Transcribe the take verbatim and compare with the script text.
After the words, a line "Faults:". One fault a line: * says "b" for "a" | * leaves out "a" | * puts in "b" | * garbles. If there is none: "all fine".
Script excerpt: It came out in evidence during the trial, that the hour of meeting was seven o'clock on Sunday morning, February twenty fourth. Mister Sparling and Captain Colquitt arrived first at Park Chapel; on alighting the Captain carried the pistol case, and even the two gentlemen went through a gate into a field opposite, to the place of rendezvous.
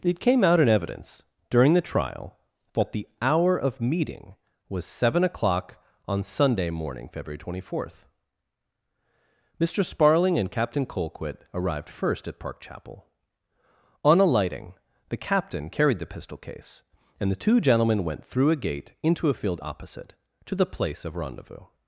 It came out in evidence during the trial, that the hour of meeting was seven o'clock on Sunday morning, February twenty fourth. Mister Sparling and Captain Colquitt arrived first at Park Chapel; on alighting the Captain carried the pistol case, and the two gentlemen went through a gate into a field opposite, to the place of rendezvous.
Faults:
* leaves out "even"